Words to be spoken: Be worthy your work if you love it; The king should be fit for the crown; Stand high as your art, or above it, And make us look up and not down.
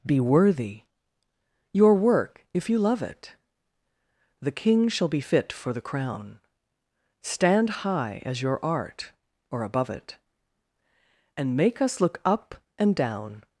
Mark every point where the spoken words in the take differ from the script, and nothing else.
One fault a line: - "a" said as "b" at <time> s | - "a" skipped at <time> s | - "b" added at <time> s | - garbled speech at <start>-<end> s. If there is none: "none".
- "should" said as "shall" at 4.9 s
- "not" skipped at 12.9 s